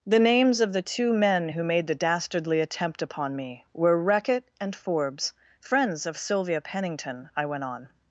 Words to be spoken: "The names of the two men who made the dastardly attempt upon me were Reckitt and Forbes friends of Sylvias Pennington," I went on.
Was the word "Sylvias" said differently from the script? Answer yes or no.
yes